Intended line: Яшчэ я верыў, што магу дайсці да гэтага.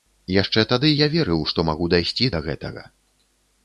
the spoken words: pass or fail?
fail